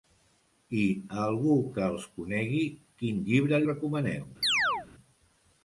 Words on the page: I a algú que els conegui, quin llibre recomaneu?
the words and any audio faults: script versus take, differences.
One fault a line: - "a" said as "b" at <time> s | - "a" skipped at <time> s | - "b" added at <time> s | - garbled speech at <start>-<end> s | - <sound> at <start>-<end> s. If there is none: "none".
- chirp at 4.4-4.9 s